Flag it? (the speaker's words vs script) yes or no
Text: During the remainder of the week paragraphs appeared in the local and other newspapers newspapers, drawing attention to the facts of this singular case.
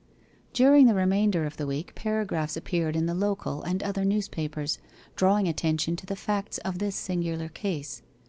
yes